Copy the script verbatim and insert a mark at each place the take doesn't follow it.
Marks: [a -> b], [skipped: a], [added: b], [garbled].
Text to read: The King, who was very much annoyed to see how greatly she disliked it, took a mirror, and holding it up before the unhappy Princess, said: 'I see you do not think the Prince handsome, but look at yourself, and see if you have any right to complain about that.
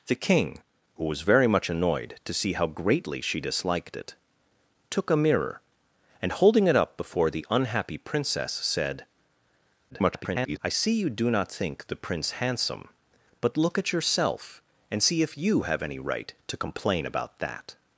The King, who was very much annoyed to see how greatly she disliked it, took a mirror, and holding it up before the unhappy Princess, said: [garbled] 'I see you do not think the Prince handsome, but look at yourself, and see if you have any right to complain about that.